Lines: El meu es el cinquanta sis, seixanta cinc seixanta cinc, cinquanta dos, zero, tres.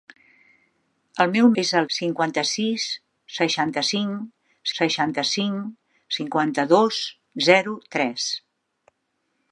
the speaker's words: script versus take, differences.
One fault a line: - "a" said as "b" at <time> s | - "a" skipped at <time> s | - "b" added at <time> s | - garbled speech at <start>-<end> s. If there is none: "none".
none